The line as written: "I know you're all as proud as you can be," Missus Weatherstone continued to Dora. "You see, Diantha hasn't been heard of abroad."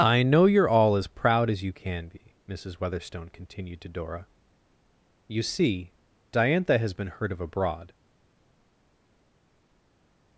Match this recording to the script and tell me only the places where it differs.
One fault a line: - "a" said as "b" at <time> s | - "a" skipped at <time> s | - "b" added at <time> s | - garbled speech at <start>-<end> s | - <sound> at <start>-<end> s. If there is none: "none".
- "hasn't" said as "has" at 6.8 s